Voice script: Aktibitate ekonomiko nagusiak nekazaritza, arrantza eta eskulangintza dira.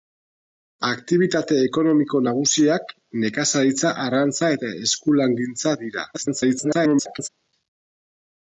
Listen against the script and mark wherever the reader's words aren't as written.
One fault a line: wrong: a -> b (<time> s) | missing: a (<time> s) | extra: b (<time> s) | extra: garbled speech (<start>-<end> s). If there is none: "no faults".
extra: garbled speech (6.1-7.3 s)